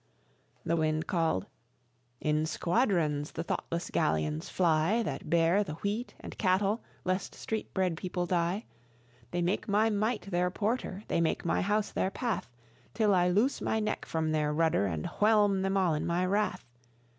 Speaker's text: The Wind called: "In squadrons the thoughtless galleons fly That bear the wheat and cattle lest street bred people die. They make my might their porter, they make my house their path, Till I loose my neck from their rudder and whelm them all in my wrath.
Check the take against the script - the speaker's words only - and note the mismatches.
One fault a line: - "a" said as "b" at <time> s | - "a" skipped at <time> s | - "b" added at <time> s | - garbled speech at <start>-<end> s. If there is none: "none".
none